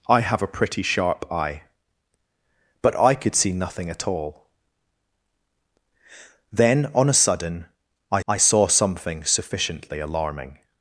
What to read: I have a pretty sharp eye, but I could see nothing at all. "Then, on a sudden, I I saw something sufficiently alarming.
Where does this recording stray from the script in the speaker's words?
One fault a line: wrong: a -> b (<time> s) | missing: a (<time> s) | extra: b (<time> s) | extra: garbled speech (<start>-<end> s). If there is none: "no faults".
no faults